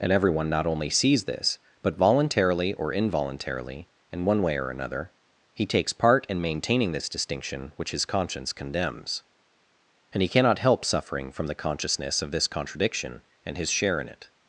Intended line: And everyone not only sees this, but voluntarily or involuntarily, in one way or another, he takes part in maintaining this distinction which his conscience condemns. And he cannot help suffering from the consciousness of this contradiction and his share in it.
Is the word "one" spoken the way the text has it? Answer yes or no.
yes